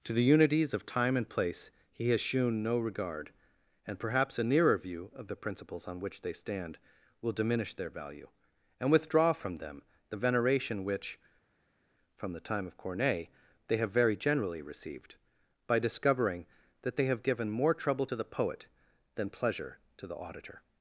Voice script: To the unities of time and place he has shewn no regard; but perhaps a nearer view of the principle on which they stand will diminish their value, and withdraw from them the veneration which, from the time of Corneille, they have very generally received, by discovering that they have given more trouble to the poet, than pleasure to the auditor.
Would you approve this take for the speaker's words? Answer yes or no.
no